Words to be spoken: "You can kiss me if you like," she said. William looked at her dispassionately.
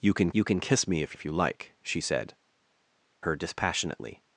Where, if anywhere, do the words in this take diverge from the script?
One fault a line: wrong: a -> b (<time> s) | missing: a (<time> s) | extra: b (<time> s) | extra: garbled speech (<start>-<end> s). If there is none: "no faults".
extra: you can (0.3 s)
extra: if (1.1 s)
missing: William looked at (2.3 s)